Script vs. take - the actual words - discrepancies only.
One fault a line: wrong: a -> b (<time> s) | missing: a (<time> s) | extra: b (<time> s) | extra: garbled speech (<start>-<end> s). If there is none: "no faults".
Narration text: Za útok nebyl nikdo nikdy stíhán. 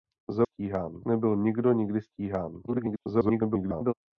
wrong: útok -> stíhán (0.4 s)
extra: garbled speech (2.7-3.9 s)